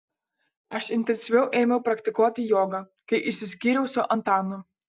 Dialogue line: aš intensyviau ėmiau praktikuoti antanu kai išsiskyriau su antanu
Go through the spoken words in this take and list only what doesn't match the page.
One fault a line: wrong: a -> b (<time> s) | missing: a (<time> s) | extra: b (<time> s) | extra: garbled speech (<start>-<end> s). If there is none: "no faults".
wrong: antanu -> jogą (2.5 s)